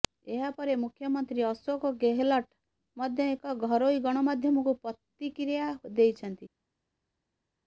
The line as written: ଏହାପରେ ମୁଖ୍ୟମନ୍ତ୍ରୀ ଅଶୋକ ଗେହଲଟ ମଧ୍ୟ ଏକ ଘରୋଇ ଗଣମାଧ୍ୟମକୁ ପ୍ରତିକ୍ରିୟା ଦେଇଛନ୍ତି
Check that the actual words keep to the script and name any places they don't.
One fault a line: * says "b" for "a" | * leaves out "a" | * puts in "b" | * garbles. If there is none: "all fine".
all fine